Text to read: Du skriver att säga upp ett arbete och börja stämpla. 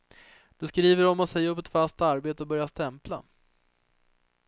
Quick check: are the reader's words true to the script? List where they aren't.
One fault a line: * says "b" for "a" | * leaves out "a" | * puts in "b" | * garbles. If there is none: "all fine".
* puts in "om"
* puts in "fast"